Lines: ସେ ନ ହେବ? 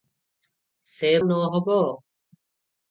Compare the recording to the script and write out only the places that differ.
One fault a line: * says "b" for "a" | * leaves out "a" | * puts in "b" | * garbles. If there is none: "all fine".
all fine